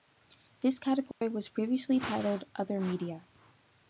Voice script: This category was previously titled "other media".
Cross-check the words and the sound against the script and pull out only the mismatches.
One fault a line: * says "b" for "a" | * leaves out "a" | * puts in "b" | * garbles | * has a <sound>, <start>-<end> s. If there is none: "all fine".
* has a dropout, 1.1-1.2 s